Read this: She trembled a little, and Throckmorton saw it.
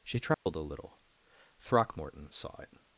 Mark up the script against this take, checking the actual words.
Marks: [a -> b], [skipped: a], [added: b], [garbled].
She trembled a little, [skipped: and] Throckmorton saw it.